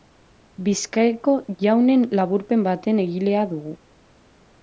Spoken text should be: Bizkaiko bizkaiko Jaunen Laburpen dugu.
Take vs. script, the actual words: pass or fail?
fail